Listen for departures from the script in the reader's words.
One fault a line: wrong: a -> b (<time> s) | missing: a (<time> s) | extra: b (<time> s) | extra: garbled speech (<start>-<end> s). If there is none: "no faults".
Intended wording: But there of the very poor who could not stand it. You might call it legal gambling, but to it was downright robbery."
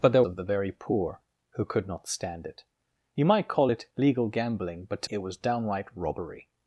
no faults